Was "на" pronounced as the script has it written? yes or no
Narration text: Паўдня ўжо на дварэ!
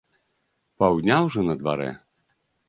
yes